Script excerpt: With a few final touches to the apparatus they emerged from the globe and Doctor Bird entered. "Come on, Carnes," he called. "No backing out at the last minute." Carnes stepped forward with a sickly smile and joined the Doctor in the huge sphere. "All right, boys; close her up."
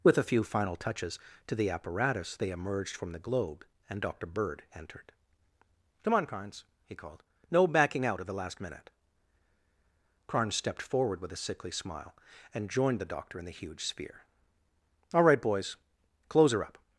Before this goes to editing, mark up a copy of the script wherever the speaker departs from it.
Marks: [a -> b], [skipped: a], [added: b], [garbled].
With a few final touches to the apparatus they emerged from the globe and Doctor Bird entered. "Come on, Carnes," he called. "No backing out at the last minute." Carnes stepped forward with a sickly smile and joined the Doctor in the huge sphere. "All right, boys; close her up."